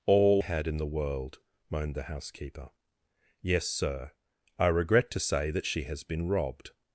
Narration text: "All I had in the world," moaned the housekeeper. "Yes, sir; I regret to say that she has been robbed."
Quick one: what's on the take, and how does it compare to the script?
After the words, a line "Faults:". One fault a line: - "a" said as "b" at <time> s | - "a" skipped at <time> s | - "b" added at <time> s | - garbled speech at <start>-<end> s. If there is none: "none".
"All had in the world," moaned the housekeeper. "Yes, sir; I regret to say that she has been robbed."
Faults:
- "I" skipped at 0.4 s